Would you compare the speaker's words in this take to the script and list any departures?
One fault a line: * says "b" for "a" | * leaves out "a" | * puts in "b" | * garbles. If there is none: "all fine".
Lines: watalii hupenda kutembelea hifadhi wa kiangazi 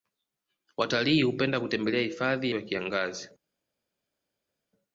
all fine